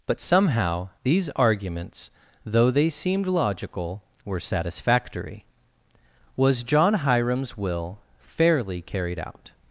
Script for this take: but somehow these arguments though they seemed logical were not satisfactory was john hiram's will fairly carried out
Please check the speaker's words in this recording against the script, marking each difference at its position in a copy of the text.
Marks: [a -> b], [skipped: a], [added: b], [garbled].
but somehow these arguments though they seemed logical were [skipped: not] satisfactory was john hiram's will fairly carried out